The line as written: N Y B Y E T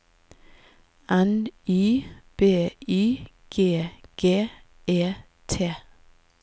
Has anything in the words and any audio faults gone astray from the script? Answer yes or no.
yes